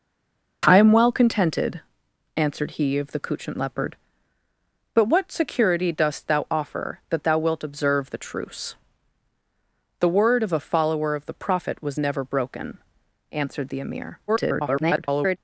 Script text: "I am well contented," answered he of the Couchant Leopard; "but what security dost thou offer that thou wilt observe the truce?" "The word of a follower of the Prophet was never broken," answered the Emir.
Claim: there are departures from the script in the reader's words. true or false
true